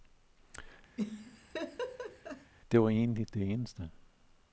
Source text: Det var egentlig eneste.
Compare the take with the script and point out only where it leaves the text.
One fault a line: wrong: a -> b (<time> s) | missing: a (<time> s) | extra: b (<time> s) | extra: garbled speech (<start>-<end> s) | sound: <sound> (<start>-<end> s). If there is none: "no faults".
sound: laugh (1.0-2.5 s)
extra: det (3.3 s)